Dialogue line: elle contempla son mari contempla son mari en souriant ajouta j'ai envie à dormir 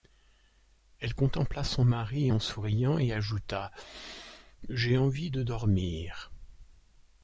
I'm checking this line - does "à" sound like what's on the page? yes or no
no